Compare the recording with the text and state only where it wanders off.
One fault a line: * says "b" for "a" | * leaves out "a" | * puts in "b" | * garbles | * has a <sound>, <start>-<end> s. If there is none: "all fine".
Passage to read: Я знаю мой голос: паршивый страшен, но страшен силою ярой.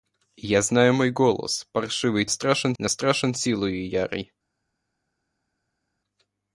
all fine